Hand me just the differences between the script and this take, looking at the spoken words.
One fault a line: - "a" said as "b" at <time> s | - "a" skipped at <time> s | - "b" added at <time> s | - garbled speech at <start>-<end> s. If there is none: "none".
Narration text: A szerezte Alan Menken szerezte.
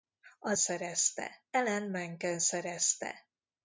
none